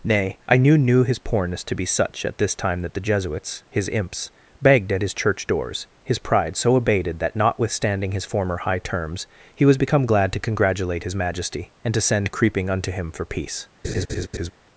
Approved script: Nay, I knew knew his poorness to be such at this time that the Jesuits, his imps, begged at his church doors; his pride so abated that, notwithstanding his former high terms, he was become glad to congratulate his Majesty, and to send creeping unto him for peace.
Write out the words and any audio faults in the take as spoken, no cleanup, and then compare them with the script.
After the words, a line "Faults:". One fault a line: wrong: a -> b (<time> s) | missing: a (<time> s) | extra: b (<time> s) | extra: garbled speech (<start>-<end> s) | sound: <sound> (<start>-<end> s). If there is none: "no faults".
Nay, I knew knew his poorness to be such at this time that the Jesuits, his imps, begged at his church doors; his pride so abated that, notwithstanding his former high terms, he was become glad to congratulate his Majesty, and to send creeping unto him for peace.
Faults:
sound: laugh (13.8-14.5 s)